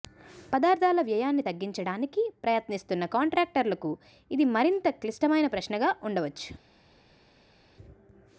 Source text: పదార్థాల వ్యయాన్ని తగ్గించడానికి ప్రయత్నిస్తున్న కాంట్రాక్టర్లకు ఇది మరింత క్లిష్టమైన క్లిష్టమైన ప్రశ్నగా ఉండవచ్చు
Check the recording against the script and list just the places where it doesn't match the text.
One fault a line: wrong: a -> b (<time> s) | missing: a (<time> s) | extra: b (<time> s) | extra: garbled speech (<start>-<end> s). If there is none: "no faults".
missing: క్లిష్టమైన (5.5 s)